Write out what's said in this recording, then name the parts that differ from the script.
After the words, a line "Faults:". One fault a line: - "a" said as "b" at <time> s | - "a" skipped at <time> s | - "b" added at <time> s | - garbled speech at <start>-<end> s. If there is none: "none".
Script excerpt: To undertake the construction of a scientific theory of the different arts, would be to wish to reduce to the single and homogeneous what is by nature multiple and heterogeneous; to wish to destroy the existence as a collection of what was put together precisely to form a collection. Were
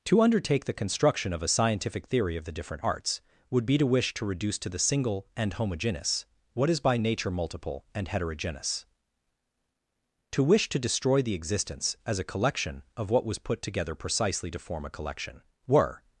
To undertake the construction of a scientific theory of the different arts, would be to wish to reduce to the single and homogeneous what is by nature multiple and heterogeneous; to wish to destroy the existence as a collection of what was put together precisely to form a collection. Were
Faults:
none